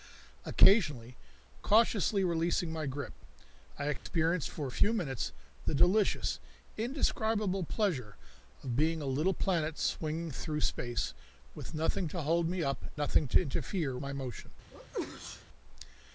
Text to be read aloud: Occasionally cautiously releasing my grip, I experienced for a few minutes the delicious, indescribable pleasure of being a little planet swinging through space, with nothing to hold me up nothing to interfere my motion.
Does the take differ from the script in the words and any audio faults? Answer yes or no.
yes